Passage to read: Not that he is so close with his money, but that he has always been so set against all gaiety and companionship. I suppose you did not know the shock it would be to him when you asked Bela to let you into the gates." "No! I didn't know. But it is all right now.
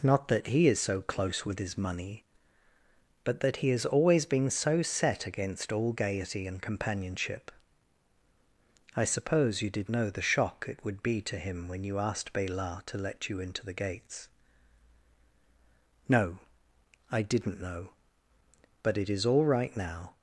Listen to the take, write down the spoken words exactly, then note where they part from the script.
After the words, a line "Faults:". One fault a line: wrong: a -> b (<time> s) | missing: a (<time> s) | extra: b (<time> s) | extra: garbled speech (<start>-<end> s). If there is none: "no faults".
Not that he is so close with his money, but that he has always been so set against all gaiety and companionship. I suppose you did know the shock it would be to him when you asked Bela to let you into the gates." "No! I didn't know. But it is all right now.
Faults:
missing: not (9.9 s)